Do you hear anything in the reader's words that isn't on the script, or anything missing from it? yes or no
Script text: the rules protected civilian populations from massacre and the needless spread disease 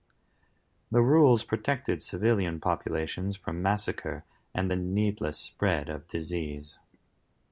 yes